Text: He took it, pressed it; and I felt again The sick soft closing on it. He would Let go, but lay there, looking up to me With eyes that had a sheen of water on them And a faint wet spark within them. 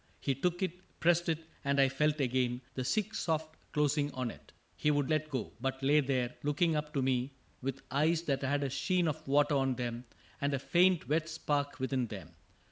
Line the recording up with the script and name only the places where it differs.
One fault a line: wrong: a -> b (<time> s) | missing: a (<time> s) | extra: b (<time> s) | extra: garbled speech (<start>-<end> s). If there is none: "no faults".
no faults